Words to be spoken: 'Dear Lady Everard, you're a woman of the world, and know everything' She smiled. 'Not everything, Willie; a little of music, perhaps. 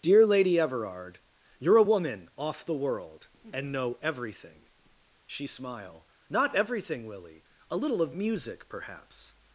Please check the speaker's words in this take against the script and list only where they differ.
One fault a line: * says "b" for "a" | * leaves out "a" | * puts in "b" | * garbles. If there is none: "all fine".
* says "off" for "of"
* says "smile" for "smiled"